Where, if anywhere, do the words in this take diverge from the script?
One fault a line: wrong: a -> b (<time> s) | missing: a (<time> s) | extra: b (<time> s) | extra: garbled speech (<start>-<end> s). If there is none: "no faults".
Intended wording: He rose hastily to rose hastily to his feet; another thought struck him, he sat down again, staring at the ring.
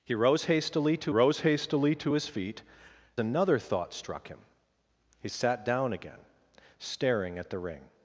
no faults